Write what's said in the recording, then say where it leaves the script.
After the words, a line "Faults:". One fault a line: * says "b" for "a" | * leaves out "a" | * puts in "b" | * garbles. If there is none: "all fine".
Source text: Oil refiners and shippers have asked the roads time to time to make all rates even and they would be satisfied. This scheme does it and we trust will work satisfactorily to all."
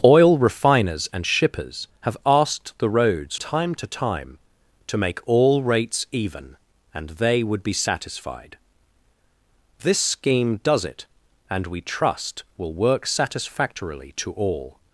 Oil refiners and shippers have asked the roads time to time to make all rates even and they would be satisfied. This scheme does it and we trust will work satisfactorily to all."
Faults:
all fine